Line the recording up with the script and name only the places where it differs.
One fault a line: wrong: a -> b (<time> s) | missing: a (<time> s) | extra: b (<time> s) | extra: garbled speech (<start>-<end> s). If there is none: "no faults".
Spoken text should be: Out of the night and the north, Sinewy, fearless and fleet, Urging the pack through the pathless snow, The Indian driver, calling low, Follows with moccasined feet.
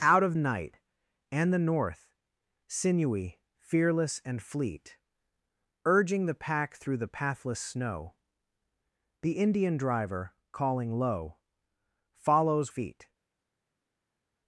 missing: the (0.3 s)
missing: with moccasined (12.7 s)